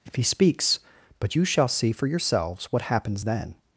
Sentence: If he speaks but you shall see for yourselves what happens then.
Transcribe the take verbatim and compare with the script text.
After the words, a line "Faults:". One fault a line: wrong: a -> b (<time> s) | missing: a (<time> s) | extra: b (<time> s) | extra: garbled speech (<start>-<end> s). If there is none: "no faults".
If he speaks but you shall see for yourselves what happens then.
Faults:
no faults